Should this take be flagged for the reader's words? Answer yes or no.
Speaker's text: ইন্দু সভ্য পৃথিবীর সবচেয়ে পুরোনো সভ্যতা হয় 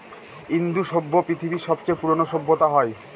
no